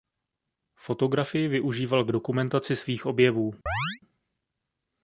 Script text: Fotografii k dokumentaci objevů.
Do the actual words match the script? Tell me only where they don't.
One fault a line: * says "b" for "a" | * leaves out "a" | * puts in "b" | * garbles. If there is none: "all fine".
* puts in "využíval"
* puts in "svých"